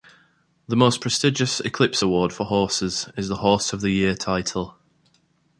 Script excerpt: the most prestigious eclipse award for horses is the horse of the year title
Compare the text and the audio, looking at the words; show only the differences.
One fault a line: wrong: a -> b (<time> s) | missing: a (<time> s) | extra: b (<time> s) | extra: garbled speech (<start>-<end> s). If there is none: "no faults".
no faults